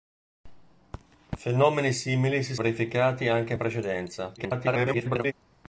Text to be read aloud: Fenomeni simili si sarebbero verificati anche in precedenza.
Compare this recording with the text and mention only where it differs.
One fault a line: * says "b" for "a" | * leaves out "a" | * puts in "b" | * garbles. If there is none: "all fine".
* leaves out "sarebbero"
* garbles